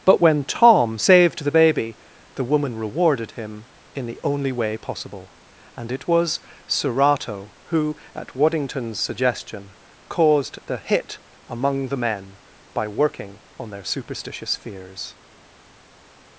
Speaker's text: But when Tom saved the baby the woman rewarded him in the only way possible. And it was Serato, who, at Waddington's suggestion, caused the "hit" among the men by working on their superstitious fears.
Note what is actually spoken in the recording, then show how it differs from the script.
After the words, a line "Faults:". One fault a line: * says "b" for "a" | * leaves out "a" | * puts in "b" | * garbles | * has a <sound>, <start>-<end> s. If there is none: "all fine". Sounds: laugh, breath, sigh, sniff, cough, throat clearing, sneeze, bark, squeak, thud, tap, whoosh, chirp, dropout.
But when Tom saved the baby the woman rewarded him in the only way possible. And it was Serato, who, at Waddington's suggestion, caused the "hit" among the men by working on their superstitious fears.
Faults:
all fine